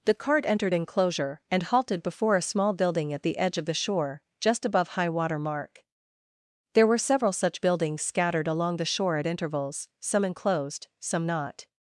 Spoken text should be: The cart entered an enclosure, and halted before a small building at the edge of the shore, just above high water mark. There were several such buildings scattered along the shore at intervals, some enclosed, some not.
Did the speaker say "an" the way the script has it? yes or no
no